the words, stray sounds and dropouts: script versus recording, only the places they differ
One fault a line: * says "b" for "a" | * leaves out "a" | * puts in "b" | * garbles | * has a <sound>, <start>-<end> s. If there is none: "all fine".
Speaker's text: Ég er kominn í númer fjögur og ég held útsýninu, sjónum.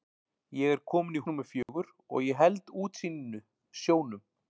* has a dropout, 1.6-1.7 s